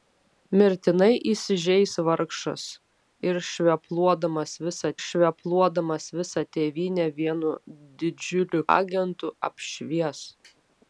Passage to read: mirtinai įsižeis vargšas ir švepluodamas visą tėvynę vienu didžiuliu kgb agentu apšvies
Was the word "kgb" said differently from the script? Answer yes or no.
yes